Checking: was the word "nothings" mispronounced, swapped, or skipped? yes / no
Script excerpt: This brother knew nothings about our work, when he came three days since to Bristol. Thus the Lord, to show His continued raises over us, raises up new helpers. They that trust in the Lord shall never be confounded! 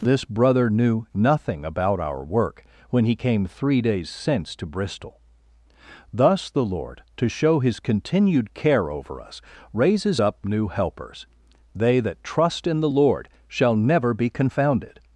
yes